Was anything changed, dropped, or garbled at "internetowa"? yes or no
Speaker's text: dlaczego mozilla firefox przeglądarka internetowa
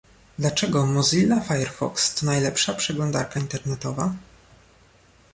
no